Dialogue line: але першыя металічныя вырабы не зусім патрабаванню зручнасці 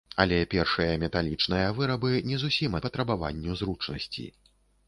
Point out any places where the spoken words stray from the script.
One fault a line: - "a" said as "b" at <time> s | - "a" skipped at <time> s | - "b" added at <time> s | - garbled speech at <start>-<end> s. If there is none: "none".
none